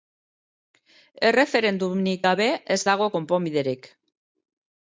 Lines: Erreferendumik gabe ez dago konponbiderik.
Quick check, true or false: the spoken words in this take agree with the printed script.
true